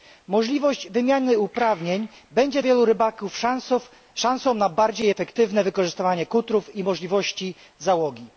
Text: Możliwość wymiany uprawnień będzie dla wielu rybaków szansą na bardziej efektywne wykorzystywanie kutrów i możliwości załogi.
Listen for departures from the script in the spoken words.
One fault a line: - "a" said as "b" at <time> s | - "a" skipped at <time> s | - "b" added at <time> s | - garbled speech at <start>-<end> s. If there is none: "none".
- "dla" skipped at 2.6 s